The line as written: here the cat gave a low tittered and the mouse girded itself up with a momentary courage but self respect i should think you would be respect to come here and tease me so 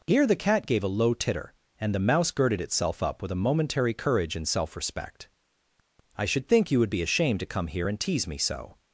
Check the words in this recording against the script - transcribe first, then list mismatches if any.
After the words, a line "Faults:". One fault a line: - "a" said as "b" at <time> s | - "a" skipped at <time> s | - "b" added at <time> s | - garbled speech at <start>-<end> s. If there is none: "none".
here the cat gave a low titter and the mouse girded itself up with a momentary courage and self respect i should think you would be ashamed to come here and tease me so
Faults:
- "tittered" said as "titter" at 1.1 s
- "but" said as "and" at 4.3 s
- "respect" said as "ashamed" at 7.0 s